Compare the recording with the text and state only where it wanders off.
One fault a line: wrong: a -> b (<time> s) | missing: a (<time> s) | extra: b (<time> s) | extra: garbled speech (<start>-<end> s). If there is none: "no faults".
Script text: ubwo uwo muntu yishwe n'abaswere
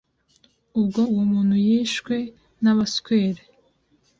no faults